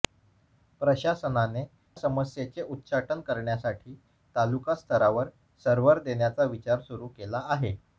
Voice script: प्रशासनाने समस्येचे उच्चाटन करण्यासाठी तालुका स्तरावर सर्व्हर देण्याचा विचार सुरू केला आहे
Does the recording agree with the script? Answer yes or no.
yes